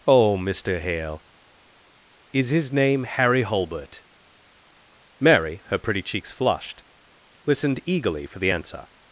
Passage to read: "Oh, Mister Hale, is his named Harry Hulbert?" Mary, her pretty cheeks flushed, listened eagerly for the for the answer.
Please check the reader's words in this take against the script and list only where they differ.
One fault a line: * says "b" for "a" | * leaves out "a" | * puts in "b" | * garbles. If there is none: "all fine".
* says "name" for "named"
* leaves out "for the"